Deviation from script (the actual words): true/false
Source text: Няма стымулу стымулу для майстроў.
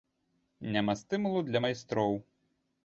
true